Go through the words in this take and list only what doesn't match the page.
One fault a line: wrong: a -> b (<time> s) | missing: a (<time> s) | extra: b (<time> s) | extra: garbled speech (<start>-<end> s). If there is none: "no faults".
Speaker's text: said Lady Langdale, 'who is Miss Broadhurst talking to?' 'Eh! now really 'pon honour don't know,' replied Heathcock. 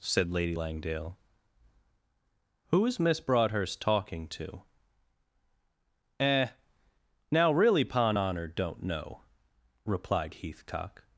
no faults